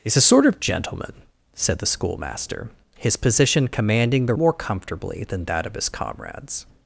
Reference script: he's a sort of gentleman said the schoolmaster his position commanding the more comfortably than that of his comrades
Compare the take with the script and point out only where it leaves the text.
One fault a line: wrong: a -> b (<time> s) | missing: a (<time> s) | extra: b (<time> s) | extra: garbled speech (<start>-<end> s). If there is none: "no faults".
no faults